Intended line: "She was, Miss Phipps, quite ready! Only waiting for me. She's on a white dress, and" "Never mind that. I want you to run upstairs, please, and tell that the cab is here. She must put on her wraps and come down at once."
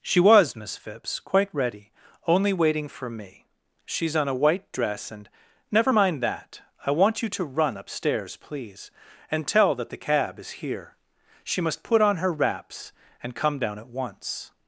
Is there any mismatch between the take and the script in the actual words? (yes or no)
no